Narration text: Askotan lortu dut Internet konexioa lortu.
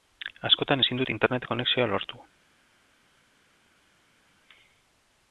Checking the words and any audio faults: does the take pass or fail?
fail